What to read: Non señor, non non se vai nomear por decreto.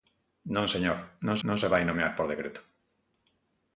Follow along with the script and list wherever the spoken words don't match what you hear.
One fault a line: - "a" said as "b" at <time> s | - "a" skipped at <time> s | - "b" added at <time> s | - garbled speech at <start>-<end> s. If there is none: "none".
none